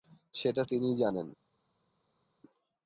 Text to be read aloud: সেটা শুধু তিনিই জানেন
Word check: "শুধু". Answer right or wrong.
wrong